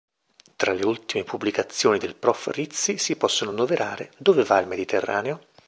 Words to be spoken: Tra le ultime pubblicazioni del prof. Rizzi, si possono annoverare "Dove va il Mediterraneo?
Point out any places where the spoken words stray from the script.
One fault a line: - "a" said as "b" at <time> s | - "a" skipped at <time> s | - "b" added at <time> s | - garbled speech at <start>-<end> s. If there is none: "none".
none